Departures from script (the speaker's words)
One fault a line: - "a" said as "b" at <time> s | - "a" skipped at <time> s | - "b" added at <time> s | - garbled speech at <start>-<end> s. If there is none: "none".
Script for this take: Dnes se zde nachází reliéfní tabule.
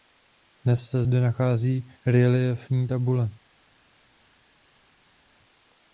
none